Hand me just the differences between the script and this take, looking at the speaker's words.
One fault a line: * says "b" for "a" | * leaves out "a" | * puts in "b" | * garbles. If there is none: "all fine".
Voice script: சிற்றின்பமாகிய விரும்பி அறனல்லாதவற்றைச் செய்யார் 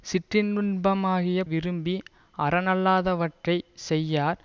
all fine